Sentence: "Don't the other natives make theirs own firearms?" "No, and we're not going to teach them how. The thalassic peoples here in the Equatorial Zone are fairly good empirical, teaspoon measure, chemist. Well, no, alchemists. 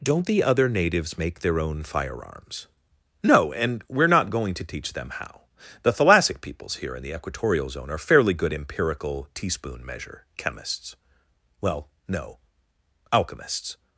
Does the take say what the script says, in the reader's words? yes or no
no